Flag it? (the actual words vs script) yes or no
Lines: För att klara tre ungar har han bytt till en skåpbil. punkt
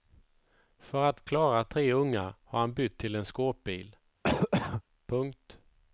no